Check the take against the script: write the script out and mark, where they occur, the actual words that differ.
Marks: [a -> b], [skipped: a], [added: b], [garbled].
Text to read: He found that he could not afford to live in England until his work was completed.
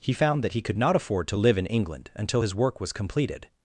He found that he could not afford to live in England until his work was completed.